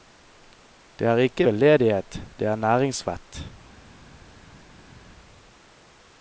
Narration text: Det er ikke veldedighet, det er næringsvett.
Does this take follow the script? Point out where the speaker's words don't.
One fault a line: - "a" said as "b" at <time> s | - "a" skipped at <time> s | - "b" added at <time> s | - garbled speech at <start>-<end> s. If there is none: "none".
none